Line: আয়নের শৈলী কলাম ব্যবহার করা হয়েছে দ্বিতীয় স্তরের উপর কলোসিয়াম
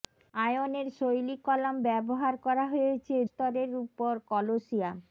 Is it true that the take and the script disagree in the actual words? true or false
true